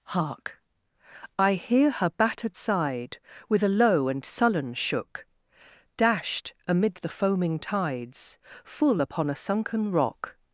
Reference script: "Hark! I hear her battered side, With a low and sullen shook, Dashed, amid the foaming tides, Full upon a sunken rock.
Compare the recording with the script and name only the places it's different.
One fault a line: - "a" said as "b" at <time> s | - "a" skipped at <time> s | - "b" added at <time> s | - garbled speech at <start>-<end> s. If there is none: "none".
none